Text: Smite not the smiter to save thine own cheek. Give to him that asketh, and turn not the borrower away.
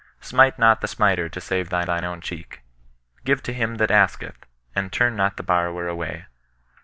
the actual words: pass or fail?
fail